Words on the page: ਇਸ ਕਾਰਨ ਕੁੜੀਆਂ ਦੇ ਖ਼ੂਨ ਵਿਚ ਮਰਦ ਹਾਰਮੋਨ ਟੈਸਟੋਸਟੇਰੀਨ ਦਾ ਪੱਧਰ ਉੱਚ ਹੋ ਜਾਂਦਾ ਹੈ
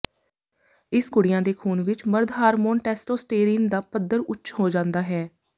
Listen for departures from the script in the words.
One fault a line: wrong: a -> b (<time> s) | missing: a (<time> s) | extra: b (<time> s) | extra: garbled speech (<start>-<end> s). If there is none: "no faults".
missing: ਕਾਰਨ (1.1 s)